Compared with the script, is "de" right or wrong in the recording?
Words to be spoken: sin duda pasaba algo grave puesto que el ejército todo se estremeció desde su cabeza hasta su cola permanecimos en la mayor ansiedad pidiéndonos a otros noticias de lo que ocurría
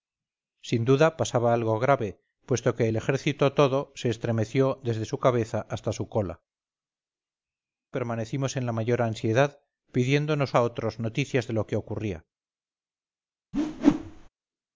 right